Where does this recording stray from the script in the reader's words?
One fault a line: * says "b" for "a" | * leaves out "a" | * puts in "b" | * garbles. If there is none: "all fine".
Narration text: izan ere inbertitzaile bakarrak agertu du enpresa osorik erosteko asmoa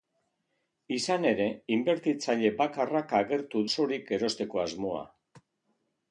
* leaves out "du enpresa"